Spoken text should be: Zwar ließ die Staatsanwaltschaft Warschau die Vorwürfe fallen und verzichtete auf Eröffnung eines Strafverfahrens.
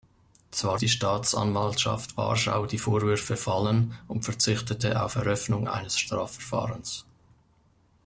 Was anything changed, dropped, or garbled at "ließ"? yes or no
yes